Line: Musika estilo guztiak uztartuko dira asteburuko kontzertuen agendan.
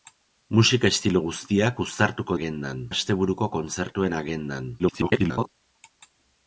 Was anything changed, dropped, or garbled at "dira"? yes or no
yes